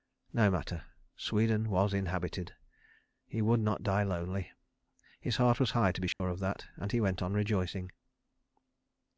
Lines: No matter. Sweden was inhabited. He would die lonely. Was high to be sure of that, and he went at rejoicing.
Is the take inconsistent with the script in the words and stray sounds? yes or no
yes